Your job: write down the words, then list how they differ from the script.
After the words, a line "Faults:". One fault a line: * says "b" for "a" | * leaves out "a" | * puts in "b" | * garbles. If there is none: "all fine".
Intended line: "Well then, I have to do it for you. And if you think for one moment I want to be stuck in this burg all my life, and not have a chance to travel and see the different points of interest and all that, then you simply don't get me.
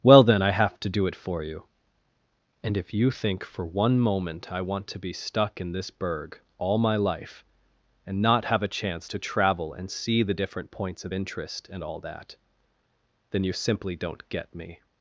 "Well then, I have to do it for you. And if you think for one moment I want to be stuck in this burg all my life, and not have a chance to travel and see the different points of interest and all that, then you simply don't get me.
Faults:
all fine